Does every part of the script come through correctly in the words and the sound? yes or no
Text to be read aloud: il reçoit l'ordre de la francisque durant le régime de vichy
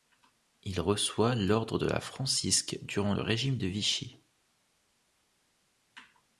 yes